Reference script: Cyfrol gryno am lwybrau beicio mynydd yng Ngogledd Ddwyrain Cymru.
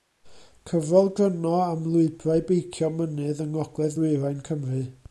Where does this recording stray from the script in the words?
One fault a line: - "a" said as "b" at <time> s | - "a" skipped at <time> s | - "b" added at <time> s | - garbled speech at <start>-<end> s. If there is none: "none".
none